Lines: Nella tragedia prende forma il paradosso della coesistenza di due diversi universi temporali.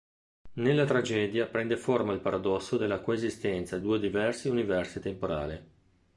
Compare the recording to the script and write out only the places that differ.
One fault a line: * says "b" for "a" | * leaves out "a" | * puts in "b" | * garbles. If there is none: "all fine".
all fine